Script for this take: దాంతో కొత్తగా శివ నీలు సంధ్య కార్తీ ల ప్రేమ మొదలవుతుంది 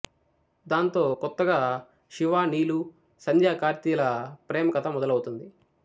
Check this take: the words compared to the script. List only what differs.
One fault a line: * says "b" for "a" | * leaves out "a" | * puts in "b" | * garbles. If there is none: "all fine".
* puts in "కథ"